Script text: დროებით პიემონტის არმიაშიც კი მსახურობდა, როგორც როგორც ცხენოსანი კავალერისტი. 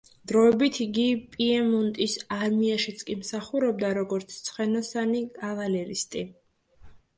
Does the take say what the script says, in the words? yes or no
no